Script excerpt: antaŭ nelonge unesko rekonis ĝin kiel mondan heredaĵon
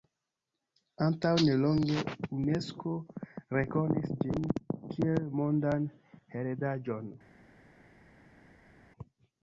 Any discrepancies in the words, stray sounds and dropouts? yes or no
no